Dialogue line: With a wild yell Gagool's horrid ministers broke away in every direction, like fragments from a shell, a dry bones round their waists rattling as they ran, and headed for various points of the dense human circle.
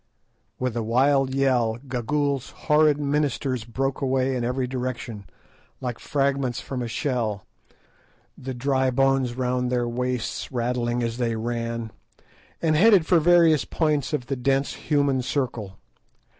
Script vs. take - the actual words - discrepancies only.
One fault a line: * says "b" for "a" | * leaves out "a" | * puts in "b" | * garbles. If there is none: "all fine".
* says "the" for "a"